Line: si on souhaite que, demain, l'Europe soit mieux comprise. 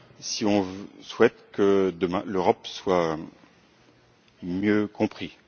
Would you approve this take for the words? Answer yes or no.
yes